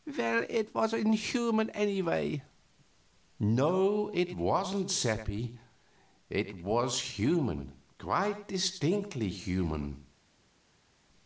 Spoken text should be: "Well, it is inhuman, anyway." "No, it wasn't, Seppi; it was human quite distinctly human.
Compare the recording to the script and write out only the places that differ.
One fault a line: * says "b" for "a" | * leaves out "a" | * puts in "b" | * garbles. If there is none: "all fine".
* says "was" for "is"